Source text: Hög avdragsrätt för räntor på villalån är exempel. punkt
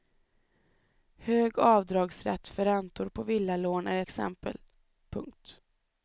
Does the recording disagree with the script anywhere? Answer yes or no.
no